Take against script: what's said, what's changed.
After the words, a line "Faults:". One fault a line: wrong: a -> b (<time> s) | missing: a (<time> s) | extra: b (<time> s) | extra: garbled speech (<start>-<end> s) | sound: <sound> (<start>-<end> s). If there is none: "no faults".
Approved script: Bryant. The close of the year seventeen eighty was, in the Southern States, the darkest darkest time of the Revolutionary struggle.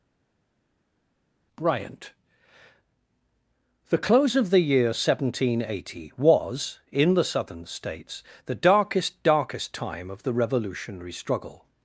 Bryant. The close of the year seventeen eighty was, in the Southern States, the darkest darkest time of the Revolutionary struggle.
Faults:
no faults